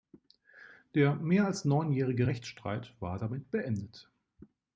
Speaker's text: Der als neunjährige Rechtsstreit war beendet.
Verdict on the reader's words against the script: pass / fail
fail